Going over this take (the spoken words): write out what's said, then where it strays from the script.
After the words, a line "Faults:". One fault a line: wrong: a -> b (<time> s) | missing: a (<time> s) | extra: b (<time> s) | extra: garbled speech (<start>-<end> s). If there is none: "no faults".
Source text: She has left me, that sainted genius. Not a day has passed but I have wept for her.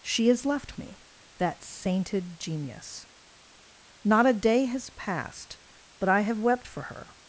She has left me, that sainted genius. Not a day has passed but I have wept for her.
Faults:
no faults